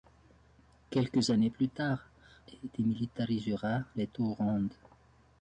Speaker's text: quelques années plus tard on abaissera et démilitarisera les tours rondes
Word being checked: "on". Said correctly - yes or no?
no